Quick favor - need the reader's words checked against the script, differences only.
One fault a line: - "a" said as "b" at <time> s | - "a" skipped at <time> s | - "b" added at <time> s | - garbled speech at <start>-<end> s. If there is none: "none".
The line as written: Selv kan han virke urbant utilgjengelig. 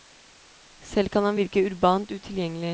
none